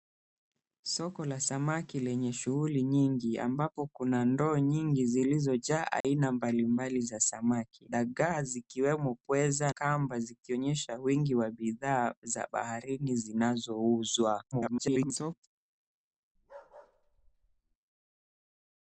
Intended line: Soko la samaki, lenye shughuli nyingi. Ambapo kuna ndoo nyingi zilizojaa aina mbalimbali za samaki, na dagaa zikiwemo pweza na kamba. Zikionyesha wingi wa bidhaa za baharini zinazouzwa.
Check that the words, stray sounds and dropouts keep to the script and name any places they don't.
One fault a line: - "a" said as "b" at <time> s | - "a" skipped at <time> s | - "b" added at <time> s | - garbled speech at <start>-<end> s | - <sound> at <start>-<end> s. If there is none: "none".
- dropout at 6.0-6.0 s
- "na" skipped at 7.9 s
- "na" skipped at 9.7 s
- garbled speech at 14.5-15.5 s
- bark at 16.4-17.8 s